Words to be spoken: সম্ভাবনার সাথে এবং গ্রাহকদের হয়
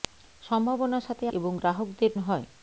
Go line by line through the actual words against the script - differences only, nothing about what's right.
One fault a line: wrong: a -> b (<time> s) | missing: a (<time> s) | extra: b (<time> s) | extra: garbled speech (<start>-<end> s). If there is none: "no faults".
no faults